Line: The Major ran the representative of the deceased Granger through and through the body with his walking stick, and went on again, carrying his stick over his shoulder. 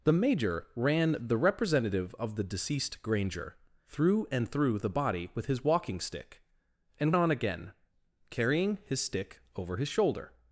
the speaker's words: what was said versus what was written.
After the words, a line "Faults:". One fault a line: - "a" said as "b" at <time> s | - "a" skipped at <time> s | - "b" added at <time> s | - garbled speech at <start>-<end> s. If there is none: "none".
The Major ran the representative of the deceased Granger through and through the body with his walking stick, and on again, carrying his stick over his shoulder.
Faults:
- "went" skipped at 7.1 s